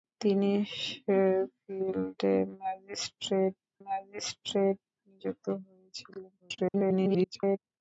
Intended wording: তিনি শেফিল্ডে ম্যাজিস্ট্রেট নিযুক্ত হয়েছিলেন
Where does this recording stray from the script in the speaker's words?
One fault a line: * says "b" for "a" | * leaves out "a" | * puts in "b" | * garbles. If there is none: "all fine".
* puts in "ম্যাজিস্ট্রেট"
* garbles